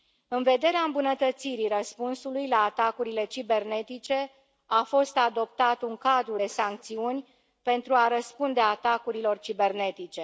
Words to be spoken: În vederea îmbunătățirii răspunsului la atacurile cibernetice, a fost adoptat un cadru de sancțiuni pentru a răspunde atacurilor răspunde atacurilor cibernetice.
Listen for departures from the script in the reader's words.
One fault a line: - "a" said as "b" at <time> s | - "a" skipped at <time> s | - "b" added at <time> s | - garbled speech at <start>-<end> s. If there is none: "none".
- "răspunde atacurilor" skipped at 9.4 s